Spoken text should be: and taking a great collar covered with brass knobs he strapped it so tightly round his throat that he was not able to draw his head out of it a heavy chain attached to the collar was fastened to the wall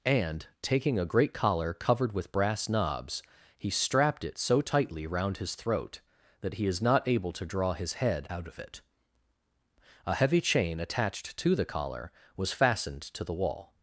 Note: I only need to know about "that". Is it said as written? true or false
true